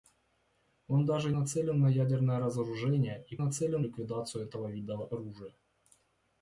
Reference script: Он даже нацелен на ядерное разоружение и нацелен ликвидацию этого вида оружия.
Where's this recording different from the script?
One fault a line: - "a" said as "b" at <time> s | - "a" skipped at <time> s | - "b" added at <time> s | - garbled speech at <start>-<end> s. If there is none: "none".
none